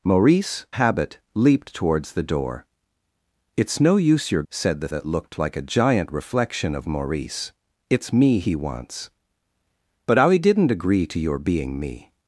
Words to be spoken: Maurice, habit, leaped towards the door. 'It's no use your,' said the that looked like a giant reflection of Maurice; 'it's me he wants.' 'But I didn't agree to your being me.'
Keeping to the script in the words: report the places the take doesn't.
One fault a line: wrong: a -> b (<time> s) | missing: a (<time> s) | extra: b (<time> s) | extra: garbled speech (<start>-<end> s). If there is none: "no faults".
no faults